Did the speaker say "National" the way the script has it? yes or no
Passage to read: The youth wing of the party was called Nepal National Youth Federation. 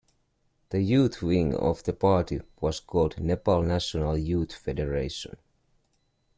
yes